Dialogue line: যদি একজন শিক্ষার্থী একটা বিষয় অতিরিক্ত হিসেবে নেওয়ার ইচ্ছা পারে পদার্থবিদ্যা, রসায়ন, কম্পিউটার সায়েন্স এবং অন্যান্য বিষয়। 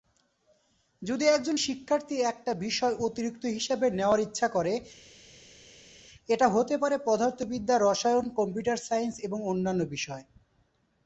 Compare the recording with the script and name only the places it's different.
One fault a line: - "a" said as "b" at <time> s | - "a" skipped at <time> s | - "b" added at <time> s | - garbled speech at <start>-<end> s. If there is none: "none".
- "করে এটা হতে" added at 4.5 s